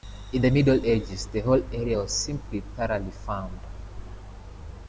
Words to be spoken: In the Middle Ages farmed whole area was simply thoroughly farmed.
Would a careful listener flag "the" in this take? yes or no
no